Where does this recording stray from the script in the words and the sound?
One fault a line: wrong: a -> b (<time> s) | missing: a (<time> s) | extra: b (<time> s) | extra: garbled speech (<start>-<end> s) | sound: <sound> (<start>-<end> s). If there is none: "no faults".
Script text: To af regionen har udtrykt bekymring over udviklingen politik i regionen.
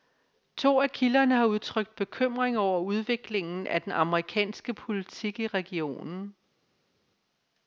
wrong: regionen -> kilderne (0.9 s)
extra: af den amerikanske (3.7 s)